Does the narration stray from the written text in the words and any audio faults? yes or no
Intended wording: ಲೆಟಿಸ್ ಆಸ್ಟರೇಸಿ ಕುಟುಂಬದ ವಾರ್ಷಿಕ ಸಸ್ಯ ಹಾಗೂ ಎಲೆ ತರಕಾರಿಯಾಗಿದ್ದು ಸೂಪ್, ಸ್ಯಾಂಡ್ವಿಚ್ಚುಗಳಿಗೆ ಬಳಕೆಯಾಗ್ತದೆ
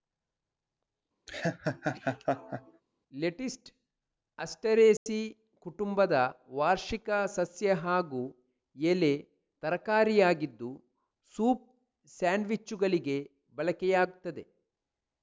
yes